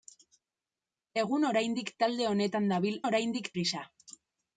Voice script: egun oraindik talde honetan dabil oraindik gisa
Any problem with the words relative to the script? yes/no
no